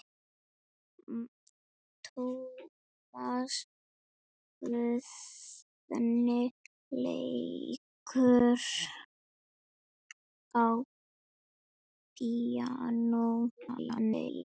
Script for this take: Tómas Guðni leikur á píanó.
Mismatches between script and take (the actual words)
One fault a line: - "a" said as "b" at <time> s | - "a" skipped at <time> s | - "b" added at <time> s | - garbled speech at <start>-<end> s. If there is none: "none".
- garbled speech at 13.6-14.4 s